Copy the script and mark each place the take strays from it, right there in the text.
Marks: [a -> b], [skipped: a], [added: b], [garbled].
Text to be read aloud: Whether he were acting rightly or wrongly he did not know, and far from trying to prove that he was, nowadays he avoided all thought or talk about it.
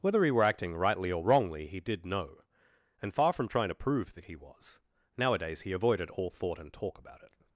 Whether he were acting rightly or wrongly he did [skipped: not] know, and far from trying to prove that he was, nowadays he avoided all thought [or -> and] talk about it.